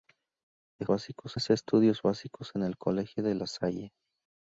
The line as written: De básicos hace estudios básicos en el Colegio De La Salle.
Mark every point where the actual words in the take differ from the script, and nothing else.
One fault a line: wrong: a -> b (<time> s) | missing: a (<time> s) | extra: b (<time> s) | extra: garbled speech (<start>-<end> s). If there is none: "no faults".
no faults